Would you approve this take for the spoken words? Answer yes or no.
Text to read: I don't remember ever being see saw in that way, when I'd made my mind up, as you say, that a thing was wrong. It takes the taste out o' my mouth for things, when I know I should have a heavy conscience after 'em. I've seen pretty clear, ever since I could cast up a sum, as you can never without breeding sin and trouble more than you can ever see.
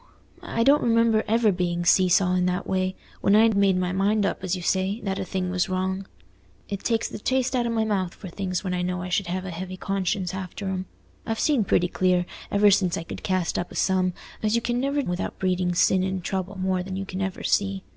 yes